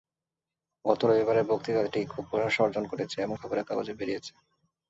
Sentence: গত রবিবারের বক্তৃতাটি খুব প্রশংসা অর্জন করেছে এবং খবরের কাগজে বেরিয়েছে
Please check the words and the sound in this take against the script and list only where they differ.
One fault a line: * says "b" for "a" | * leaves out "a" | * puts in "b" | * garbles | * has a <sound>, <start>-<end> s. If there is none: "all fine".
all fine